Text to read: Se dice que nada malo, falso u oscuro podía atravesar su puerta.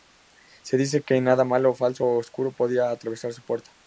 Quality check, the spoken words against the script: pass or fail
pass